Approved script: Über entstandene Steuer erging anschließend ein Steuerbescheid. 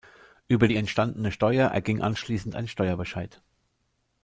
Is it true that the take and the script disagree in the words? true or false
true